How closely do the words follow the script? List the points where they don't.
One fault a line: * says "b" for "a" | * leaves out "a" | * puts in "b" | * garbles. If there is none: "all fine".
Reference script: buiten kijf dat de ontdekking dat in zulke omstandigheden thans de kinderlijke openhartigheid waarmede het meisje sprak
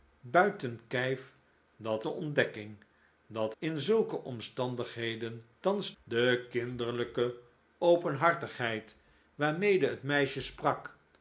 all fine